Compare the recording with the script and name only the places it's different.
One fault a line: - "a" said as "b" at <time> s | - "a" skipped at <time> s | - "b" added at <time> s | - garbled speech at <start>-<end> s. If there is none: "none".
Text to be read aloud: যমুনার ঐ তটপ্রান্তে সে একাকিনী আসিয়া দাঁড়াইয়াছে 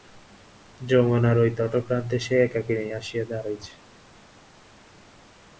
none